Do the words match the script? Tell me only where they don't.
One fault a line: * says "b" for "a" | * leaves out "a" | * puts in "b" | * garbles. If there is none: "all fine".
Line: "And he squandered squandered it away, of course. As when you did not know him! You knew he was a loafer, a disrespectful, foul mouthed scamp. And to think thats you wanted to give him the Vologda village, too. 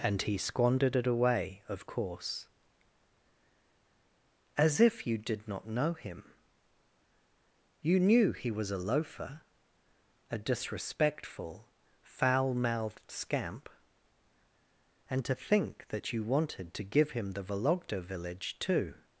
* leaves out "squandered"
* says "if" for "when"
* says "that" for "thats"